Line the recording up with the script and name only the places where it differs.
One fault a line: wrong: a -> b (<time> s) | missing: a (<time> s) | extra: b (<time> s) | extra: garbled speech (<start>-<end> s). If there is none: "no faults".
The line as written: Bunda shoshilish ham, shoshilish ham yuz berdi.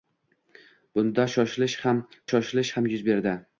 no faults